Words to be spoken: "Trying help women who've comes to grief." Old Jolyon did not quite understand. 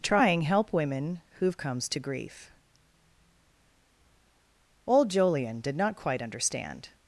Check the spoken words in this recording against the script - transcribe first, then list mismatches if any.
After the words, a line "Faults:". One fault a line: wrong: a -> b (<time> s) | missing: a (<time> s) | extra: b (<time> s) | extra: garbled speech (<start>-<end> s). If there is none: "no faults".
"Trying help women who've comes to grief." Old Jolyon did not quite understand.
Faults:
no faults